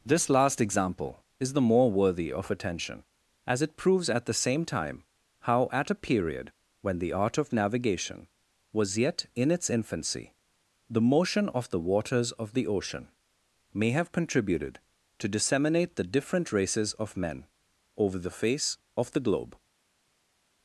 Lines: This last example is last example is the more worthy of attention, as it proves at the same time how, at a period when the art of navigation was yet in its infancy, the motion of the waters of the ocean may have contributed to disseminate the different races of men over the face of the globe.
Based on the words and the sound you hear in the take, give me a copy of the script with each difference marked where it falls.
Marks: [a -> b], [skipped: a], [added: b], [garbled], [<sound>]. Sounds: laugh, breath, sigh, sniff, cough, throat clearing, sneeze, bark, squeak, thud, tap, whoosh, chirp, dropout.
This last example is [skipped: last example is] the more worthy of attention, as it proves at the same time how, at a period when the art of navigation was yet in its infancy, the motion of the waters of the ocean may have contributed to disseminate the different races of men over the face of the globe.